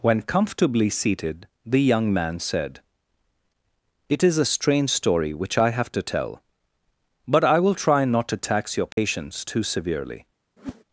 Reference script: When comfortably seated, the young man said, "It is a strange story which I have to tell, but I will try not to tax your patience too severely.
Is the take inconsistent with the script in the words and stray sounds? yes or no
yes